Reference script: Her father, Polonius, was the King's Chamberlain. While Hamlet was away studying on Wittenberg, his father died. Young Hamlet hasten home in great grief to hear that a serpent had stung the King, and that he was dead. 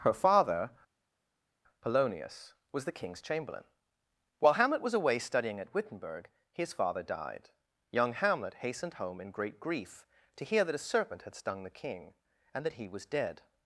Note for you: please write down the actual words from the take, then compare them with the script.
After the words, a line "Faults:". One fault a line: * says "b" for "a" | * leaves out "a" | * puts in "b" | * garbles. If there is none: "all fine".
Her father, Polonius, was the King's Chamberlain. While Hamlet was away studying at Wittenberg, his father died. Young Hamlet hastened home in great grief to hear that a serpent had stung the King, and that he was dead.
Faults:
* says "at" for "on"
* says "hastened" for "hasten"